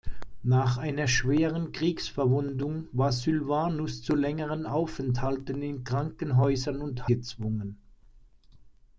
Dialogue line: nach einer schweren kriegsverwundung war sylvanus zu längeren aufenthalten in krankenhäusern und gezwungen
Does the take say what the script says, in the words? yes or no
yes